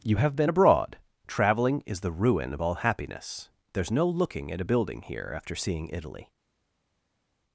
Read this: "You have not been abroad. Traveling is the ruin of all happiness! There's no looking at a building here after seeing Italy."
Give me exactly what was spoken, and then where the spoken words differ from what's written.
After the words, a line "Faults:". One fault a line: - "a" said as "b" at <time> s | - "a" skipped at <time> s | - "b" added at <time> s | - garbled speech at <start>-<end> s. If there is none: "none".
"You have been abroad. Traveling is the ruin of all happiness! There's no looking at a building here after seeing Italy."
Faults:
- "not" skipped at 0.3 s